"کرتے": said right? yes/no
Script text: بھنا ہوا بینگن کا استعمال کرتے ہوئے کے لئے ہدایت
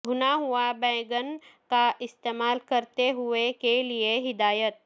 yes